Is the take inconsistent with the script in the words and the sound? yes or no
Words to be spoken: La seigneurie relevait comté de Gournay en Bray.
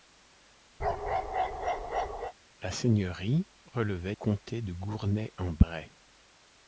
yes